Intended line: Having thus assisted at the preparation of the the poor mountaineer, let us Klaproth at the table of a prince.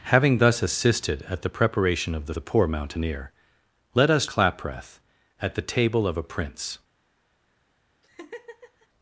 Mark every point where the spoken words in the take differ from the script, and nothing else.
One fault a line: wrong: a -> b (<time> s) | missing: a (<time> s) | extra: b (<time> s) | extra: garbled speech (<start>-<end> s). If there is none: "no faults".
no faults